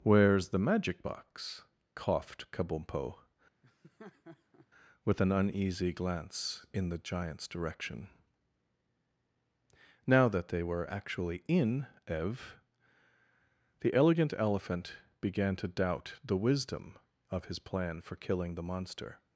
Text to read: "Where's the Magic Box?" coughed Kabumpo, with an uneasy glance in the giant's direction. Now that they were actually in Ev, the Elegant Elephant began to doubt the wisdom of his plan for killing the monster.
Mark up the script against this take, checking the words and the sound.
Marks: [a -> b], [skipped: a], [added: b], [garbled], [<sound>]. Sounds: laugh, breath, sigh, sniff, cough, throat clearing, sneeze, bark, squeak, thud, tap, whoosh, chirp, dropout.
"Where's the Magic Box?" coughed Kabumpo, [laugh] with an uneasy glance in the giant's direction. Now that they were actually in Ev, the Elegant Elephant began to doubt the wisdom of his plan for killing the monster.